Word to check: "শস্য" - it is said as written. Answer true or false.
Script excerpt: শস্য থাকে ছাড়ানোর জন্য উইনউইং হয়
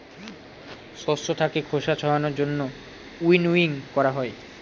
true